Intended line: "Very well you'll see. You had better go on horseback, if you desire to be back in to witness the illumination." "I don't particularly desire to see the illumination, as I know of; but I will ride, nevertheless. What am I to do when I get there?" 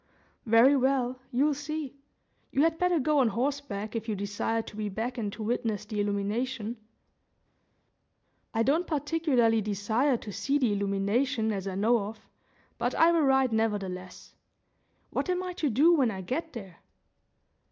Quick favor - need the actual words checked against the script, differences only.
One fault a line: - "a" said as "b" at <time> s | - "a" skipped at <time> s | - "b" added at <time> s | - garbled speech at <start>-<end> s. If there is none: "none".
none